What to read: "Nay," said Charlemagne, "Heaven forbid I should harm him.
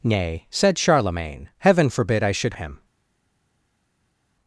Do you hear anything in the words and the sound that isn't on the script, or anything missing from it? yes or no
yes